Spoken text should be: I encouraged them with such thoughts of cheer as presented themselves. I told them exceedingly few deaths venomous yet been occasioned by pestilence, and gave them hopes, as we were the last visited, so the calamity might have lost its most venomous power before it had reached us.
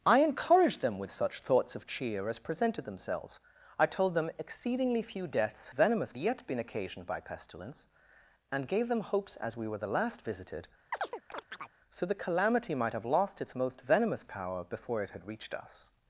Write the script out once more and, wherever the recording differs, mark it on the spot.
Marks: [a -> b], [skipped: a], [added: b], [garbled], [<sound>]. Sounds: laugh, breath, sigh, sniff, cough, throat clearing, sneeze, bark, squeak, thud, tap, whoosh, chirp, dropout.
I encouraged them with such thoughts of cheer as presented themselves. I told them exceedingly few deaths venomous yet been occasioned by pestilence, and gave them hopes, as we were the last visited, [chirp] so the calamity might have lost its most venomous power before it had reached us.